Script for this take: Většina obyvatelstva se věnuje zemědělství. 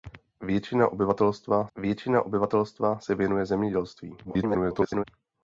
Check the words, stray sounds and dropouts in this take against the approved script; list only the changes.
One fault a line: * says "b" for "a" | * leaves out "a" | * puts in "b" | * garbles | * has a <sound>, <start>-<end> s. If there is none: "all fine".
* puts in "většina obyvatelstva"
* garbles